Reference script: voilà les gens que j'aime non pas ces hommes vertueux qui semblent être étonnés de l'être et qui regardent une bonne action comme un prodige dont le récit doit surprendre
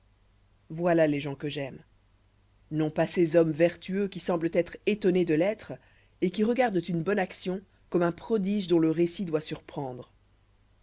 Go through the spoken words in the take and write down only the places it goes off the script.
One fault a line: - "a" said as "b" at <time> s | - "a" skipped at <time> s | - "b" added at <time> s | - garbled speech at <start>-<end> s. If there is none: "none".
none